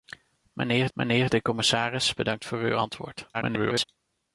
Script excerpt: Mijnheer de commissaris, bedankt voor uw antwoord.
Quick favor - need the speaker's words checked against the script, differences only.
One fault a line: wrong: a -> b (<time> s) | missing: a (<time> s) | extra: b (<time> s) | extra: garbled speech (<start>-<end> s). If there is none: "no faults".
extra: mijnheer (0.9 s)
extra: garbled speech (3.3-3.8 s)